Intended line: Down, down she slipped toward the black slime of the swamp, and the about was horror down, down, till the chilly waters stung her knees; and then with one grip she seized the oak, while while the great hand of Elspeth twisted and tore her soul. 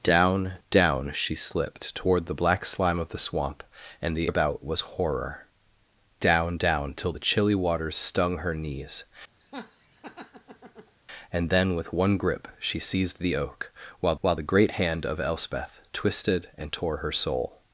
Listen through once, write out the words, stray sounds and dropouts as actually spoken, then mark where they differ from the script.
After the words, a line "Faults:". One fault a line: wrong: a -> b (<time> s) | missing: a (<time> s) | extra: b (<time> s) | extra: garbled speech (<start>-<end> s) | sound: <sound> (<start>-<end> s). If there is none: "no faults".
Down, down she slipped toward the black slime of the swamp, and the about was horror down, down, till the chilly waters stung her knees; and then with one grip she seized the oak, while while the great hand of Elspeth twisted and tore her soul.
Faults:
sound: laugh (9.4-11.0 s)